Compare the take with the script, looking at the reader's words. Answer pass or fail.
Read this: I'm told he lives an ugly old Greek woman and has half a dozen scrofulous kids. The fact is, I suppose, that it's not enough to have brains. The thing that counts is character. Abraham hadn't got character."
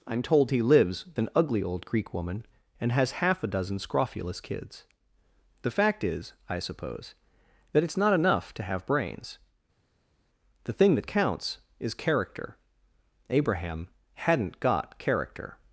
pass